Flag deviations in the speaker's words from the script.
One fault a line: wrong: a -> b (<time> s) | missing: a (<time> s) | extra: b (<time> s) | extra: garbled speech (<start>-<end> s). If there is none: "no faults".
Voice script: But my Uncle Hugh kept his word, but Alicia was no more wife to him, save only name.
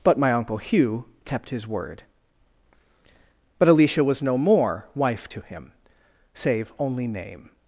no faults